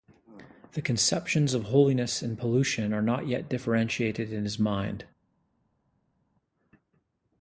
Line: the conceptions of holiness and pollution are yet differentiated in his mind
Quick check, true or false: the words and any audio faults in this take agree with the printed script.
false